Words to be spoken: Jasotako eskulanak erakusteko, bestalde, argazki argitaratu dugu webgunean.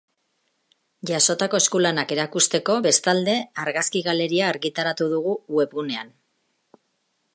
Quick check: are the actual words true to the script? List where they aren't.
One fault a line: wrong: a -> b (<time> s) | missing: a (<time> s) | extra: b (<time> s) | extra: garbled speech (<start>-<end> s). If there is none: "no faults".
extra: galeria (4.1 s)